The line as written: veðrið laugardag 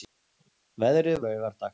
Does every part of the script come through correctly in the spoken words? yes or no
yes